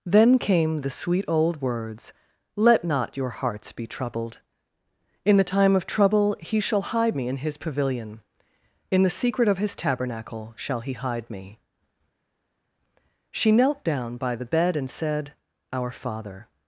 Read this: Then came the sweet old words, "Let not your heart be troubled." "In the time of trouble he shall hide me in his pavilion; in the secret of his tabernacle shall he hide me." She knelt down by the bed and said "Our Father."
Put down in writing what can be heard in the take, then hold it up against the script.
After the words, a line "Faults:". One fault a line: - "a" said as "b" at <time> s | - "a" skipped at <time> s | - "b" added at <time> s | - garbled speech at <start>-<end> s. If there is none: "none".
Then came the sweet old words, "Let not your hearts be troubled." "In the time of trouble he shall hide me in his pavilion; in the secret of his tabernacle shall he hide me." She knelt down by the bed and said "Our Father."
Faults:
- "heart" said as "hearts" at 3.3 s